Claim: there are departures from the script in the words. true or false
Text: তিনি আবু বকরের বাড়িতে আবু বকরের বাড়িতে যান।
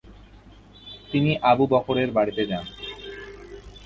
true